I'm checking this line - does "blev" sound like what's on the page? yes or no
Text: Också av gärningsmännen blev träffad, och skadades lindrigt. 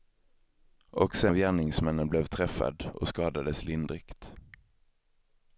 yes